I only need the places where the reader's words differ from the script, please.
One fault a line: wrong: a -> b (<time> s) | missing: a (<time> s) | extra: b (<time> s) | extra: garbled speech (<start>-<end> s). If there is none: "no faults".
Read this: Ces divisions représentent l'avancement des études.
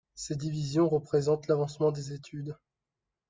no faults